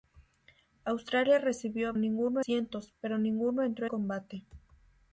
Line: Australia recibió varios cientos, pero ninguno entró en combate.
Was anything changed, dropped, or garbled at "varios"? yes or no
yes